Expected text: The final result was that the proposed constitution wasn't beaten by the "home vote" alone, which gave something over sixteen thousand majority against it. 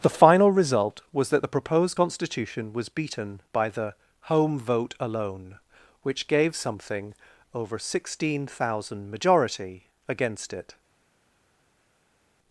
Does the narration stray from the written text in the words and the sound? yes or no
yes